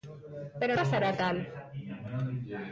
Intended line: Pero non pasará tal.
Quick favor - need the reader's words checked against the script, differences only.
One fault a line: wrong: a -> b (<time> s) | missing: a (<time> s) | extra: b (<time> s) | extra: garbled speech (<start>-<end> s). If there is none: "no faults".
missing: non (0.7 s)